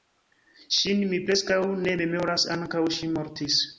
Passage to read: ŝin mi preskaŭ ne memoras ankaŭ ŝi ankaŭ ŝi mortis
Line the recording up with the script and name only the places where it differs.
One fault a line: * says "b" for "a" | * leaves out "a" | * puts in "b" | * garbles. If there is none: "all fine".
* leaves out "ankaŭ ŝi"